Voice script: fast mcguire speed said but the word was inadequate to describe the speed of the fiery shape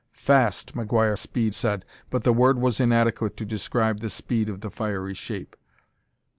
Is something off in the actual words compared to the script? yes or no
no